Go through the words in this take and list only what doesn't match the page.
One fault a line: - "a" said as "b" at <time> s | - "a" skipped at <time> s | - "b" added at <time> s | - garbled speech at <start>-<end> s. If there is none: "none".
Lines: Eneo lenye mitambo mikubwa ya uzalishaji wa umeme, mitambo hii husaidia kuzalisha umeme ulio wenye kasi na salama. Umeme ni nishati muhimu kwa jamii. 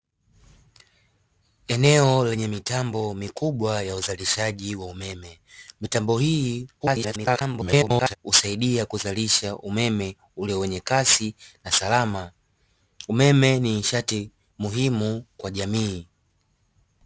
- garbled speech at 6.8-8.2 s